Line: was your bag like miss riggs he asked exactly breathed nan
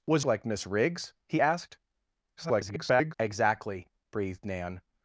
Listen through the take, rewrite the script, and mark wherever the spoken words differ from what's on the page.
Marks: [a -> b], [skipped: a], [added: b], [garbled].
was [skipped: your bag] like miss riggs he asked [garbled] exactly breathed nan